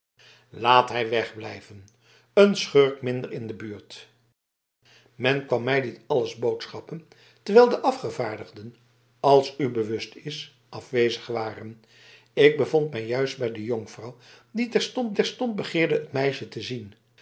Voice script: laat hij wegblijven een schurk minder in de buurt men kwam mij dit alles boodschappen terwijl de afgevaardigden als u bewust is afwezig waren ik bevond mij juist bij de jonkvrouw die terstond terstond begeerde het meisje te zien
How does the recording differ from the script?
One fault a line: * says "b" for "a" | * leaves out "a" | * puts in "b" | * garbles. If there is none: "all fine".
all fine